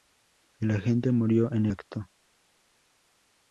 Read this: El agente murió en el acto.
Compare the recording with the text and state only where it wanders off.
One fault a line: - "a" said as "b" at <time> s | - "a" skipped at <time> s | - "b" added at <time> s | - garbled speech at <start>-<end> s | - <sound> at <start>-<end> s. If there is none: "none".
- "el" skipped at 1.7 s